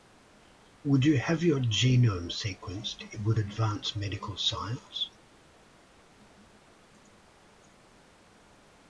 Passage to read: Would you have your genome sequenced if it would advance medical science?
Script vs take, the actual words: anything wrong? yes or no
yes